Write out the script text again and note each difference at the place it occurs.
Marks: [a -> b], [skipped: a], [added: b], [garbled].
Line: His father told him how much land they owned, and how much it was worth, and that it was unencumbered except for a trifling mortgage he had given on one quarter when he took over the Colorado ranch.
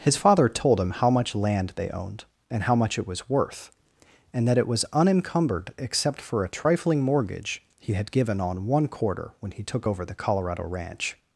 His father told him how much land they owned, and how much it was worth, and that it was unencumbered except for a trifling mortgage he had given on one quarter when he took over the Colorado ranch.